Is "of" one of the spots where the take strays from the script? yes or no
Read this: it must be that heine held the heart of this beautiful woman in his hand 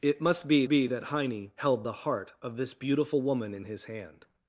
no